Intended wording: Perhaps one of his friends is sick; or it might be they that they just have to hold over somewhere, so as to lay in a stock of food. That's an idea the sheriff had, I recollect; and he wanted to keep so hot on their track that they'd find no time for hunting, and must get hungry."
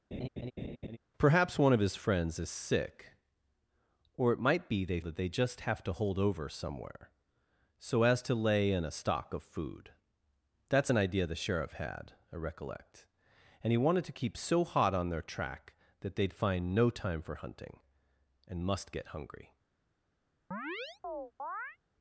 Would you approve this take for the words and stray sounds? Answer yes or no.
no